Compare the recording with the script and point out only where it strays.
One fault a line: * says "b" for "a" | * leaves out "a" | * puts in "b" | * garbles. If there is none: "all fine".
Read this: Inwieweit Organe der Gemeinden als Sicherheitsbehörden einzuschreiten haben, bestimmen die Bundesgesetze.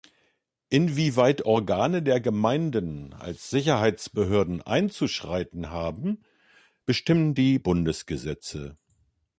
all fine